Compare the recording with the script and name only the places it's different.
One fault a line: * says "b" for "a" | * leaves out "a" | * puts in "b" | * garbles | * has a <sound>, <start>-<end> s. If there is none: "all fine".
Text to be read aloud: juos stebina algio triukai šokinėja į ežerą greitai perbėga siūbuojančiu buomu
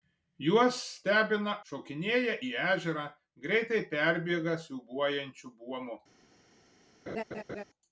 * leaves out "algio triukai"
* has a laugh, 7.1-7.6 s